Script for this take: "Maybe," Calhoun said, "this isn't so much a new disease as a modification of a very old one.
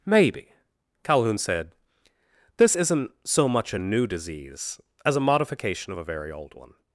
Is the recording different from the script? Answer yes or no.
no